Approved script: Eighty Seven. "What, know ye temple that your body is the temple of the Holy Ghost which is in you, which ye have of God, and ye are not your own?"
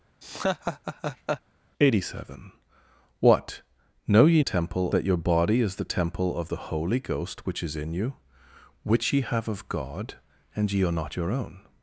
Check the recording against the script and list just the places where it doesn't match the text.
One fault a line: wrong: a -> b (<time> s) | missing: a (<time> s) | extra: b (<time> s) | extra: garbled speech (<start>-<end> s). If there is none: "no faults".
no faults